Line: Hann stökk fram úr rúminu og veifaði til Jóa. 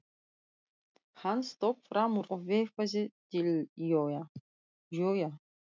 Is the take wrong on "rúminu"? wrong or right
wrong